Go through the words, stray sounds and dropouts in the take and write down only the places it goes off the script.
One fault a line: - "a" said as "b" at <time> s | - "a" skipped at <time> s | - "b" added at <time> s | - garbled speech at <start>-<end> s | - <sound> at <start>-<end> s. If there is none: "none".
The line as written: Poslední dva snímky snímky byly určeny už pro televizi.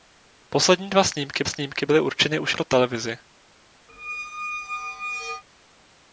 - squeak at 3.9-5.4 s